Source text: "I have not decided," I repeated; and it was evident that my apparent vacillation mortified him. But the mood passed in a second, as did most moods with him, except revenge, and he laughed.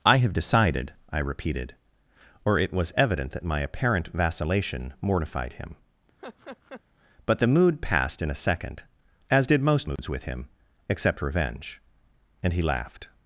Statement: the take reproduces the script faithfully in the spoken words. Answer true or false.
false